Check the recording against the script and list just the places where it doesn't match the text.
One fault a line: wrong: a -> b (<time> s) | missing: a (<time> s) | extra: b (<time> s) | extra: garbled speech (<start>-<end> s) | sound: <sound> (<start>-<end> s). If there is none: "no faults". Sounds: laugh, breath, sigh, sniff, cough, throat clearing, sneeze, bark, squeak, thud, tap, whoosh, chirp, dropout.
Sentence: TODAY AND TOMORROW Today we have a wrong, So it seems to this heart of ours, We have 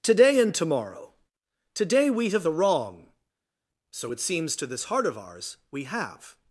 no faults